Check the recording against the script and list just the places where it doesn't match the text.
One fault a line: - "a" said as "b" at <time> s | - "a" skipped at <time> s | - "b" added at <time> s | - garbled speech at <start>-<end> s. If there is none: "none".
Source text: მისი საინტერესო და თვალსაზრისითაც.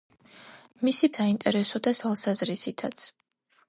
none